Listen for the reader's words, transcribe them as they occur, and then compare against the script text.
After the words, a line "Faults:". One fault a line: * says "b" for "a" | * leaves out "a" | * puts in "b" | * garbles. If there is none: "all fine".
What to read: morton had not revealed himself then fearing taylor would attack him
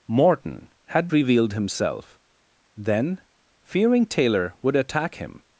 morton had revealed himself then fearing taylor would attack him
Faults:
* leaves out "not"